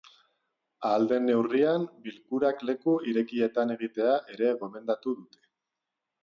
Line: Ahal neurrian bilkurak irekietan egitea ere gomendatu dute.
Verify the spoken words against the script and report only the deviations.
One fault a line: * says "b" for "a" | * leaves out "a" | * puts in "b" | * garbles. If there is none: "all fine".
* puts in "den"
* puts in "leku"